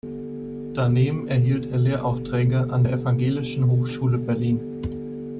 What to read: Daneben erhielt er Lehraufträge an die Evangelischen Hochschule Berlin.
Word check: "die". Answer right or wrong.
wrong